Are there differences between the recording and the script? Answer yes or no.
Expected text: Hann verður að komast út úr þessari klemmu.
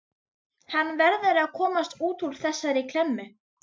no